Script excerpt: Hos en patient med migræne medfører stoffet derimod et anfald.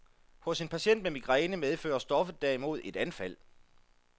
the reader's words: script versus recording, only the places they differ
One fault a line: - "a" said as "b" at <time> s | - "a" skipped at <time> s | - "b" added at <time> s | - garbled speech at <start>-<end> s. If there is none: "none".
none